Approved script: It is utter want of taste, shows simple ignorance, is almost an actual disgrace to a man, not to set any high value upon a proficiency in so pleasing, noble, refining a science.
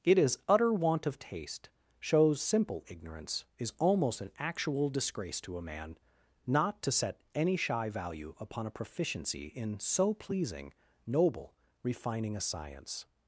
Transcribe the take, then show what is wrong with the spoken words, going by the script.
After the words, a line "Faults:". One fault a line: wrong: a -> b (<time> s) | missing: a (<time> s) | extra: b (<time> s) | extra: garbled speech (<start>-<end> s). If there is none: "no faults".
It is utter want of taste, shows simple ignorance, is almost an actual disgrace to a man, not to set any shy value upon a proficiency in so pleasing, noble, refining a science.
Faults:
wrong: high -> shy (7.6 s)